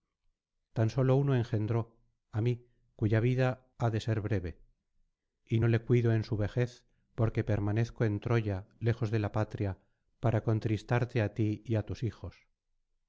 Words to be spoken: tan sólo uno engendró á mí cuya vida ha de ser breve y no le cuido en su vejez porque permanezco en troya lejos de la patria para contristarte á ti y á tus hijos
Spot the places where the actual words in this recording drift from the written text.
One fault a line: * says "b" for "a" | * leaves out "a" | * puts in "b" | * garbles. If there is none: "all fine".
all fine